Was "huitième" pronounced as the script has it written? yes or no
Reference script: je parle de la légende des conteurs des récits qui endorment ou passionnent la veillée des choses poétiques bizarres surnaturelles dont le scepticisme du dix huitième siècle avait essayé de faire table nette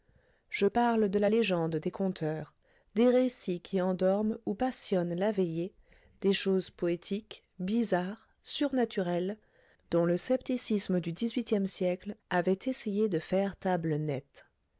yes